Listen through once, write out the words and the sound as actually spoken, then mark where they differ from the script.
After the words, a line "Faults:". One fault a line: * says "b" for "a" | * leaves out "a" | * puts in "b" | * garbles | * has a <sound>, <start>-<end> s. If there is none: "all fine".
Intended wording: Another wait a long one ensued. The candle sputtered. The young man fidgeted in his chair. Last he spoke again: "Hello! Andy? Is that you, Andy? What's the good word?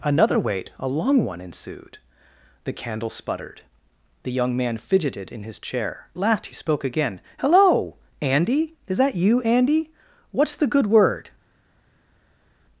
Another wait a long one ensued. The candle sputtered. The young man fidgeted in his chair. Last he spoke again: "Hello! Andy? Is that you, Andy? What's the good word?
Faults:
all fine